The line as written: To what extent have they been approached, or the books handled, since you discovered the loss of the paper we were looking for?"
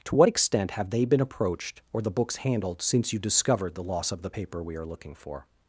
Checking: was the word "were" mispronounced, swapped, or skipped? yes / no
yes